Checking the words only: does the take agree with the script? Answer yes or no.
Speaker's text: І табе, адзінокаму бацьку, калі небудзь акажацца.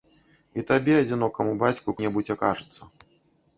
no